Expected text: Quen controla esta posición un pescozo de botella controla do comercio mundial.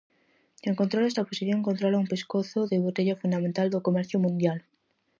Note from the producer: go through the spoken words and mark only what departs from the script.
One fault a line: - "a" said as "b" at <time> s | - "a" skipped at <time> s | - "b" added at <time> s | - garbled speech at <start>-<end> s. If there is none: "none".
- "controla" added at 1.7 s
- "controla" said as "fundamental" at 3.2 s